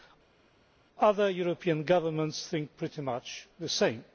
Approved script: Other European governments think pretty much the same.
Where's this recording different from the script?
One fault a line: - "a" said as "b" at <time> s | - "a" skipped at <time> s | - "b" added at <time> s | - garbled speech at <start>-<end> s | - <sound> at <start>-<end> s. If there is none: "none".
none